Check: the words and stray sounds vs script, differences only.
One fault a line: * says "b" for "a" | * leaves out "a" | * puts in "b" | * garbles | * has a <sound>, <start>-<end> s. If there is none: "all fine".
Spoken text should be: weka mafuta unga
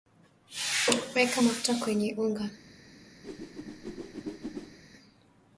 * puts in "kwenye"
* has a whoosh, 3.2-4.8 s